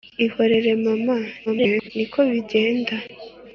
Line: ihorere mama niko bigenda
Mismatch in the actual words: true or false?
true